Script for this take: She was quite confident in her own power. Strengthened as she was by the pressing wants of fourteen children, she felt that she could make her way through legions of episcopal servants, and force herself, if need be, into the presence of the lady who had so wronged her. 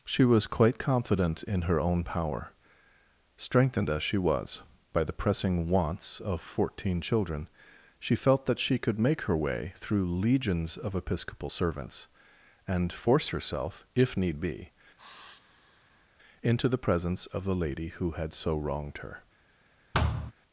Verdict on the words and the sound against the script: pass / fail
fail